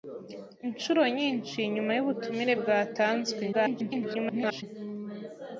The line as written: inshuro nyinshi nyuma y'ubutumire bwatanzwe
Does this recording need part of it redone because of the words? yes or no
yes